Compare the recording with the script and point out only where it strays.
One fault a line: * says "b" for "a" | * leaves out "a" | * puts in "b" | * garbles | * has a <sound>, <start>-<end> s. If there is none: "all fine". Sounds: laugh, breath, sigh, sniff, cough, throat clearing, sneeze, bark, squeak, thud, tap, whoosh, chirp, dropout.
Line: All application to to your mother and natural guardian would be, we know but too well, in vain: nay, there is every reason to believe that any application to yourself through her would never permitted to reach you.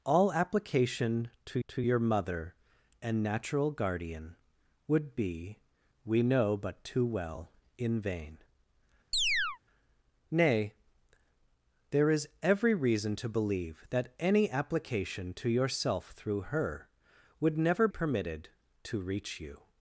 * has a chirp, 9.1-9.6 s